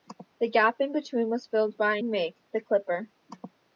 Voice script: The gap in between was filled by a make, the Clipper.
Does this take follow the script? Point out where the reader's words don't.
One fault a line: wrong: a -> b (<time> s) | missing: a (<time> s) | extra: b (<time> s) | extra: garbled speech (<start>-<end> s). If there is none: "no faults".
no faults